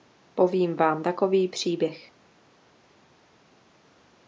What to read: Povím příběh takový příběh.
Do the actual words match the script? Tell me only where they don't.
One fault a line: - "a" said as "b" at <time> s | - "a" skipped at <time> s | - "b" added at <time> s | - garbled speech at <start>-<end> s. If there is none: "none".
- "příběh" said as "vám" at 0.8 s